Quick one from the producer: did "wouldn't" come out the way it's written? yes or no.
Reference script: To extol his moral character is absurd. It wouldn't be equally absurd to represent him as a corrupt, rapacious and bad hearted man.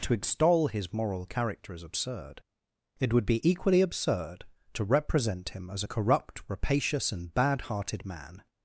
no